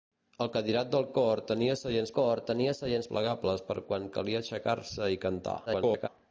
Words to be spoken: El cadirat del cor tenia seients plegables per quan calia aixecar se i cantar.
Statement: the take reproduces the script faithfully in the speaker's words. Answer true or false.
false